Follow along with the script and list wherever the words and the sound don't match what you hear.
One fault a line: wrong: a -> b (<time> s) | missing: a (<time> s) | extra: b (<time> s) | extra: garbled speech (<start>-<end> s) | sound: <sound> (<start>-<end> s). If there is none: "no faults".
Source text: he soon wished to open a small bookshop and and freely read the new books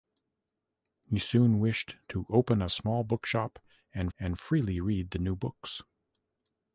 no faults